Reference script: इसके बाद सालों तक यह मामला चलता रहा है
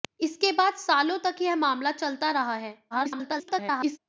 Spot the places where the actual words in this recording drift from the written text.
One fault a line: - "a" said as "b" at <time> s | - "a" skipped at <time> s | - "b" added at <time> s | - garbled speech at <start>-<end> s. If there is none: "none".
- garbled speech at 2.9-4.0 s